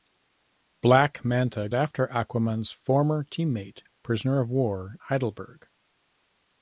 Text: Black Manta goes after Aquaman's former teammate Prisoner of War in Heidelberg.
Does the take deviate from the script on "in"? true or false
true